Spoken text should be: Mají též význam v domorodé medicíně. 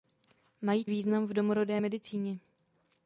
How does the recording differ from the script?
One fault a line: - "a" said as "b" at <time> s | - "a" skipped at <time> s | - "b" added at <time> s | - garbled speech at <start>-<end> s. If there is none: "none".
- "též" skipped at 0.8 s